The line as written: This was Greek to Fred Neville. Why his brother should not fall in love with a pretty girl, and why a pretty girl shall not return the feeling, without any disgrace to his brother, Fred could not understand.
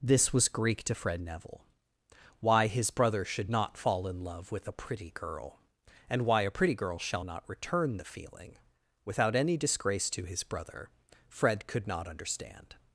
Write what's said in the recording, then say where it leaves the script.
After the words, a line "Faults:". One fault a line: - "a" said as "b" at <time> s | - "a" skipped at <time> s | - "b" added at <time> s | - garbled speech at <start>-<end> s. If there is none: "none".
This was Greek to Fred Neville. Why his brother should not fall in love with a pretty girl, and why a pretty girl shall not return the feeling, without any disgrace to his brother, Fred could not understand.
Faults:
none